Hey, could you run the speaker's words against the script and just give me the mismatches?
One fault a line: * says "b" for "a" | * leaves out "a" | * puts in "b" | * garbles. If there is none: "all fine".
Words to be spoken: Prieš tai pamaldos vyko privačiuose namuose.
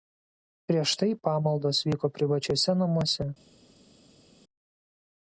all fine